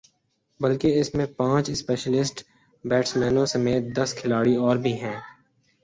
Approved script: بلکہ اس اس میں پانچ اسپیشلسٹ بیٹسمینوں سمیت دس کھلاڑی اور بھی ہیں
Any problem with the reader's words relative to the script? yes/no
yes